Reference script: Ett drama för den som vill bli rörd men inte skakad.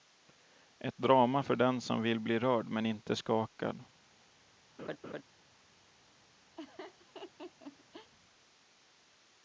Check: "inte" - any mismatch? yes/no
no